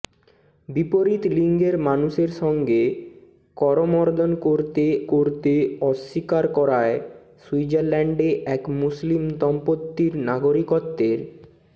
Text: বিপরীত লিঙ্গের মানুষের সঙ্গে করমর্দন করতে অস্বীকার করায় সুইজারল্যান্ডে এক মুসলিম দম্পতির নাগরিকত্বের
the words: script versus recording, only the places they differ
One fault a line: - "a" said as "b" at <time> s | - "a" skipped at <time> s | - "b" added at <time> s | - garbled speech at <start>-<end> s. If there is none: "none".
- "করতে" added at 5.1 s